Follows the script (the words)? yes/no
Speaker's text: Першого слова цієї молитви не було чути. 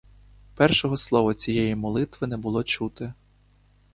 yes